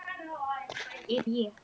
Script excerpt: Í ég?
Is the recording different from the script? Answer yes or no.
no